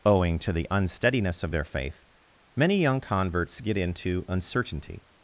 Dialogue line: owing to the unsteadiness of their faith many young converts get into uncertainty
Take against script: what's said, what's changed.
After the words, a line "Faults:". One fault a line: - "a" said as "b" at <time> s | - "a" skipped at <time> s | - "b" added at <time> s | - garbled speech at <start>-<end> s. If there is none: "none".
owing to the unsteadiness of their faith many young converts get into uncertainty
Faults:
none